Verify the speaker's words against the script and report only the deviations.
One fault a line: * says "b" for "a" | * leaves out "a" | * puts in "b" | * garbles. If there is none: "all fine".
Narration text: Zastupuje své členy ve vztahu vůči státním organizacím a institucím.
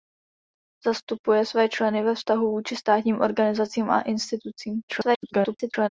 * garbles